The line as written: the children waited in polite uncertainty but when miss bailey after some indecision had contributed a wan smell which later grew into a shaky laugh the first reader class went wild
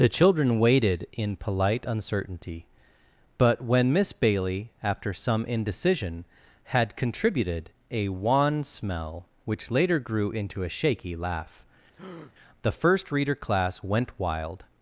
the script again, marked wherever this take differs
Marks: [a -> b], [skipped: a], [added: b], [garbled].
the children waited in polite uncertainty but when miss bailey after some indecision had contributed a wan smell which later grew into a shaky laugh the first reader class went wild